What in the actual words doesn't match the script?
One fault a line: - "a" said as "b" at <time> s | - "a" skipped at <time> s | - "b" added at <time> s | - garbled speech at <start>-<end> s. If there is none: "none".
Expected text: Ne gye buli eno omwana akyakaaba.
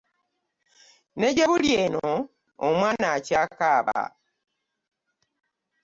none